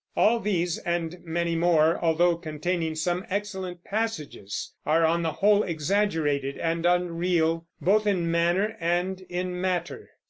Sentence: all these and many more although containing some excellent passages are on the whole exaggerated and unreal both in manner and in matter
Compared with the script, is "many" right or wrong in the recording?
right